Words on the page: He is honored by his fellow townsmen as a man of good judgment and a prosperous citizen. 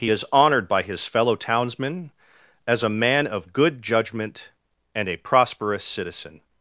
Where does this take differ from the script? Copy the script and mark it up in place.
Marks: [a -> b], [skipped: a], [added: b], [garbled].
He is honored by his fellow townsmen as a man of good judgment and a prosperous citizen.